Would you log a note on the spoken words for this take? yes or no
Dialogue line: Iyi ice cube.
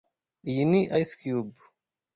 yes